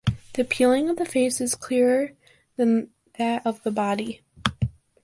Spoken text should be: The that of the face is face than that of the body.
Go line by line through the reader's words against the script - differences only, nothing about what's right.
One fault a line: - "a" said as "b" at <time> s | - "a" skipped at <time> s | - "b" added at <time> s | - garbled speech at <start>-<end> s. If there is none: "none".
- "that" said as "peeling" at 0.4 s
- "face" said as "clearer" at 1.5 s